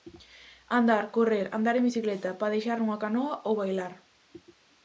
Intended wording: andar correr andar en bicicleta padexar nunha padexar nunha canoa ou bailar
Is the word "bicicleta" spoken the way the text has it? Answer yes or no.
yes